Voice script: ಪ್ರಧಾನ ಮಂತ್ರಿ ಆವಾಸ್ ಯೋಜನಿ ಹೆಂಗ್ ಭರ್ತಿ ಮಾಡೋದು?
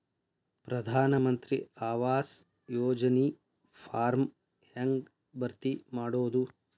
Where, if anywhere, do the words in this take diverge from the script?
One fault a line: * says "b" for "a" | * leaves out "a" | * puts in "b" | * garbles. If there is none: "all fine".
* puts in "ಫಾರ್ಮ್"